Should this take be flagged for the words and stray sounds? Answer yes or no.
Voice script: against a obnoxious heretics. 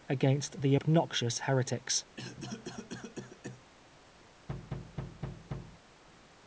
yes